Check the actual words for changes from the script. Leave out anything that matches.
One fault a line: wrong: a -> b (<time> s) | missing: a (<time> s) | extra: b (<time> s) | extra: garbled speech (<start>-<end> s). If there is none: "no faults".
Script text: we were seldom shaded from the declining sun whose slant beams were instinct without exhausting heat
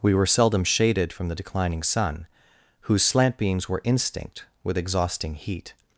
wrong: without -> with (4.6 s)